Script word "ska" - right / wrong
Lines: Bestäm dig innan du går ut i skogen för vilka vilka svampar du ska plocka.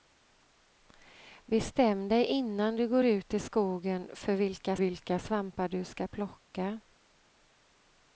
right